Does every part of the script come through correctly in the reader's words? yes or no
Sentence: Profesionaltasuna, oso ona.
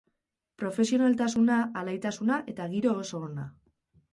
no